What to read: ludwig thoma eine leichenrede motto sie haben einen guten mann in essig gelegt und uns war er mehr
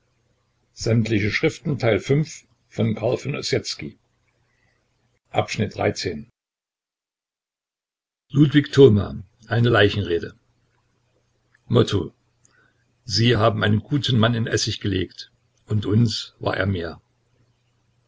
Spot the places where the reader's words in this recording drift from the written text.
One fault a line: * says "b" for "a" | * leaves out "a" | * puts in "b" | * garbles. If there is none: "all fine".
all fine